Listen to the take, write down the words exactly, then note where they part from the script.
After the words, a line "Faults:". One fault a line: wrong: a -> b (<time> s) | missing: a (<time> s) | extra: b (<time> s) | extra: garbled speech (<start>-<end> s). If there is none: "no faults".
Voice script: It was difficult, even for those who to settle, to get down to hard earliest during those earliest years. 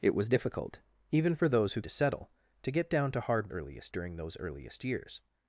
It was difficult, even for those who to settle, to get down to hard earliest during those earliest years.
Faults:
no faults